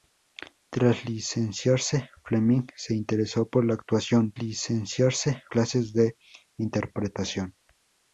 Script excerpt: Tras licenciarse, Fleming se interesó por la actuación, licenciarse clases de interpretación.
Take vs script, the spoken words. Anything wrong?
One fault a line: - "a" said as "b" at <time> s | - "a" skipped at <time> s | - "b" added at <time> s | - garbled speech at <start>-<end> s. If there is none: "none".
none